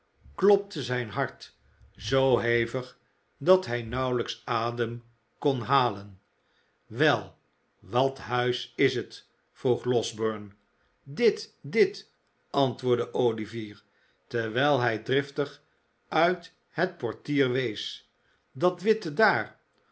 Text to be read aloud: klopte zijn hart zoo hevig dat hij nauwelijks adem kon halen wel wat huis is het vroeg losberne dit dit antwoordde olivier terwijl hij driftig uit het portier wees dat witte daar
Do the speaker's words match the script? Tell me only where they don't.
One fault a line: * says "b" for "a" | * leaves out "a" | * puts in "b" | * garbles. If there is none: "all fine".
all fine